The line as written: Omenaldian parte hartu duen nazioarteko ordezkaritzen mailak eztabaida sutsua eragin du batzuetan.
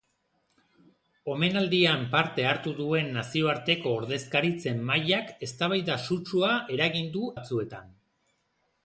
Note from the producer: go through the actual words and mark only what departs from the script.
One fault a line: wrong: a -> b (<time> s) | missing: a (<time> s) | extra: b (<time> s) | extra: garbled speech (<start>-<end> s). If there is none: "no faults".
no faults